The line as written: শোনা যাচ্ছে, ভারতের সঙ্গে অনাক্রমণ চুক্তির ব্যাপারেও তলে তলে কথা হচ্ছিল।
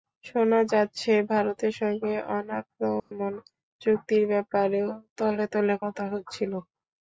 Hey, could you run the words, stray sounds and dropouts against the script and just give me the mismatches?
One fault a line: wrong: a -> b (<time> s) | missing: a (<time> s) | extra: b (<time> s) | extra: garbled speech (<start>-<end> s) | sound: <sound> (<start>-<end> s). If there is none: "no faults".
sound: dropout (3.0-3.1 s)